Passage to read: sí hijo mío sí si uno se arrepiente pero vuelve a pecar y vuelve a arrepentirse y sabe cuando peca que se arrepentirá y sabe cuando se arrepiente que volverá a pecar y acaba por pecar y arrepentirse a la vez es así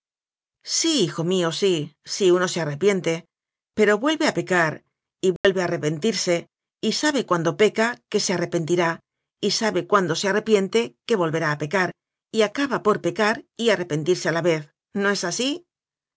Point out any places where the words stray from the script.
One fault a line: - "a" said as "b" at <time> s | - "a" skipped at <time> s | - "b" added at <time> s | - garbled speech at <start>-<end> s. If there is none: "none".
- "no" added at 14.9 s